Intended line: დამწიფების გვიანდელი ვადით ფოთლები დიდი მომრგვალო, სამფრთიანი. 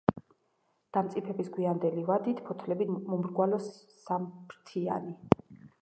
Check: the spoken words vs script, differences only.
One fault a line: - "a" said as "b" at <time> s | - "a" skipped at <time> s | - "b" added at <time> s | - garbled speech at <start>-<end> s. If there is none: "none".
- "დიდი" skipped at 2.9 s